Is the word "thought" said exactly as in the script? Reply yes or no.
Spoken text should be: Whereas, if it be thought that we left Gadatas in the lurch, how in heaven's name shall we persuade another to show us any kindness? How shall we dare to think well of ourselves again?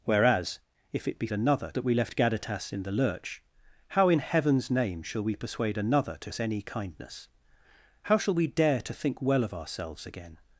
no